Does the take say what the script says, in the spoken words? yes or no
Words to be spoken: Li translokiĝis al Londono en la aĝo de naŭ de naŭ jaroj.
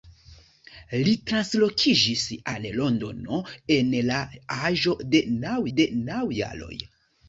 yes